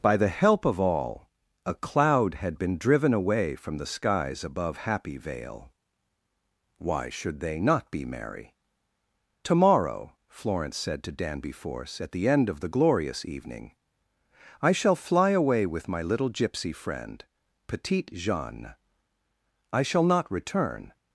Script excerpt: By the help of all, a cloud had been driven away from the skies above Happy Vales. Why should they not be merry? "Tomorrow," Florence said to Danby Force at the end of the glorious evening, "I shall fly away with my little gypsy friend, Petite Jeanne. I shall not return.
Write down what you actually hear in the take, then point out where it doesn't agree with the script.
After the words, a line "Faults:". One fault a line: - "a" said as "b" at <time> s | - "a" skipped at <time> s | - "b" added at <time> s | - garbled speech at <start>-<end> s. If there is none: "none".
By the help of all, a cloud had been driven away from the skies above Happy Vale. Why should they not be merry? "Tomorrow," Florence said to Danby Force at the end of the glorious evening, "I shall fly away with my little gypsy friend, Petite Jeanne. I shall not return.
Faults:
- "Vales" said as "Vale" at 5.2 s